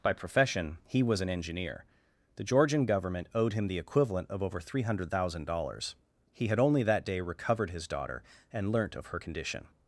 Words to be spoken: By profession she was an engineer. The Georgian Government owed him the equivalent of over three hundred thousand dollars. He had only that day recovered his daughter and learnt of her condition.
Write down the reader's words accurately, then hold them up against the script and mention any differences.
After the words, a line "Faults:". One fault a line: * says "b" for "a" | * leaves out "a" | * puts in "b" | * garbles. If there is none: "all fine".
By profession he was an engineer. The Georgian Government owed him the equivalent of over three hundred thousand dollars. He had only that day recovered his daughter and learnt of her condition.
Faults:
* says "he" for "she"